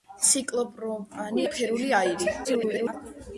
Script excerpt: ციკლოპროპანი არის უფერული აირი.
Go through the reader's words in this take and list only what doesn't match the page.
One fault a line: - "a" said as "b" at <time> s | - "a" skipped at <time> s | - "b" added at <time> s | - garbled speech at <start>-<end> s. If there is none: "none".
- "არის" skipped at 1.4 s
- garbled speech at 2.4-2.9 s